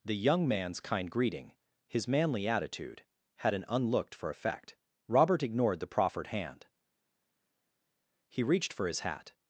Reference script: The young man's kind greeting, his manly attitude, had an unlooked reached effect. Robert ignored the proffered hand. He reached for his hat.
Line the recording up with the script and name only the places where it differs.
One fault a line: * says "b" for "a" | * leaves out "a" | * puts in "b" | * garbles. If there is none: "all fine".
* says "for" for "reached"